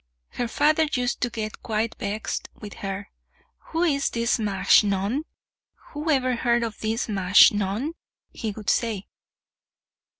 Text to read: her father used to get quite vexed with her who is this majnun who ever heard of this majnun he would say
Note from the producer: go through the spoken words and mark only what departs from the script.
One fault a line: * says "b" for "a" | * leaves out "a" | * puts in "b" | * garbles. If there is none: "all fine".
all fine